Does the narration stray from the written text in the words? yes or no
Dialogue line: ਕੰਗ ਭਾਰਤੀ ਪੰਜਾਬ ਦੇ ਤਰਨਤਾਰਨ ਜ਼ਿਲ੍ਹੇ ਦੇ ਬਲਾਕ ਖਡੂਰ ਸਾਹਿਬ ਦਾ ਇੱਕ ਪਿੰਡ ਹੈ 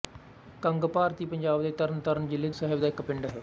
yes